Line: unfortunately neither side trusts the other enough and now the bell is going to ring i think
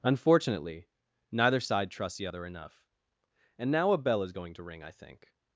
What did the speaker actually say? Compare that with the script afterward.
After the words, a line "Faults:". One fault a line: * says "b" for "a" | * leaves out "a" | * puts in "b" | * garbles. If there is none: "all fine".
unfortunately neither side trusts the other enough and now a bell is going to ring i think
Faults:
* says "a" for "the"